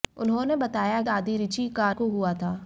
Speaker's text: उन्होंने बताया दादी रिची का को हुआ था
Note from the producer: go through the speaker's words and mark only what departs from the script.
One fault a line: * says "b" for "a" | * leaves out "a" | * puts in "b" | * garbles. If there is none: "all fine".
all fine